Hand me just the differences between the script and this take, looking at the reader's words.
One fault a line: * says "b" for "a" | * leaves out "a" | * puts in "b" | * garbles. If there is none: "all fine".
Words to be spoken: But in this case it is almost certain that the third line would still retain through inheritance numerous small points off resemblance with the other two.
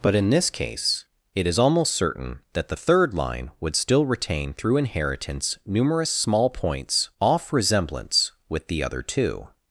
all fine